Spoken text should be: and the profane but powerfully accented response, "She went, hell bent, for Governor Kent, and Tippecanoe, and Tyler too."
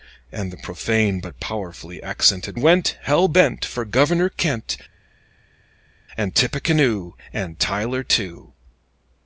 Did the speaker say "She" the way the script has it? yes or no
no